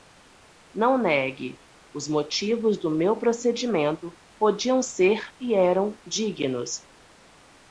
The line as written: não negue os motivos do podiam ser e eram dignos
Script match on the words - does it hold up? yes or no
no